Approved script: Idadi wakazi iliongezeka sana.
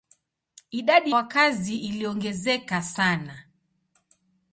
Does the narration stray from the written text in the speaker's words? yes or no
no